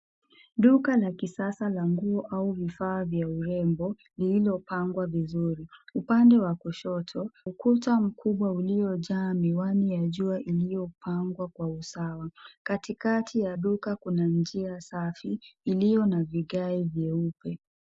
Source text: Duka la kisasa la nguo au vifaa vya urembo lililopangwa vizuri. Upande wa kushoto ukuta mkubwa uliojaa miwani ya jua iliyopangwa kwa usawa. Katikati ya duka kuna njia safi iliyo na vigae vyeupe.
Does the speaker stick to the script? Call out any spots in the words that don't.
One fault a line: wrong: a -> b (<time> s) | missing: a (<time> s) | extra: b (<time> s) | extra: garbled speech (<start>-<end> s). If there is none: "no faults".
no faults